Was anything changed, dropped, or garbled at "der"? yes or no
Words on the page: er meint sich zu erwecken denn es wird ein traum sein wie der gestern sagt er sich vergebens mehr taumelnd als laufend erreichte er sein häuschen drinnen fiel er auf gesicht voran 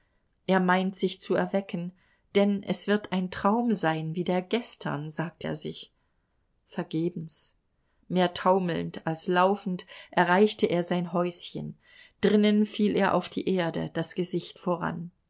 no